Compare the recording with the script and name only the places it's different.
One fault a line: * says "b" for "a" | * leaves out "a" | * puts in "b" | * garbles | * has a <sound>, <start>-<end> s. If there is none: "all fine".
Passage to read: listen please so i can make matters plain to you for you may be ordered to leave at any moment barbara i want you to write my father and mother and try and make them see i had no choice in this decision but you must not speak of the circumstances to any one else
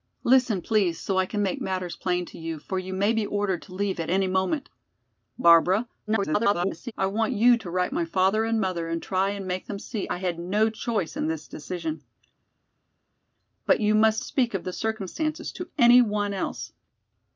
* garbles
* leaves out "not"